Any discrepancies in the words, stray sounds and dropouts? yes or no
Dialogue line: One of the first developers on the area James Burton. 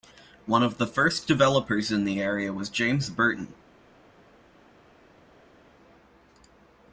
yes